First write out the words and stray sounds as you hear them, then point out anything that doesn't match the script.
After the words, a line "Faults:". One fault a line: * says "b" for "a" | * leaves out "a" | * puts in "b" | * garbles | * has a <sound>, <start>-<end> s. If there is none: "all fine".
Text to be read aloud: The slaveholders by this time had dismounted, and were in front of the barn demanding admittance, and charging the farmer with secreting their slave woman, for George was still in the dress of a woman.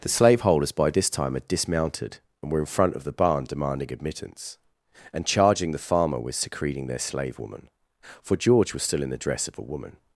The slaveholders by this time had dismounted, and were in front of the barn demanding admittance, and charging the farmer with secreting their slave woman, for George was still in the dress of a woman.
Faults:
all fine